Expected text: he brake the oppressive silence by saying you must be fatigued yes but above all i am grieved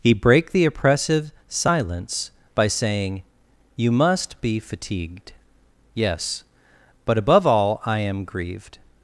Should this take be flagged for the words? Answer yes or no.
no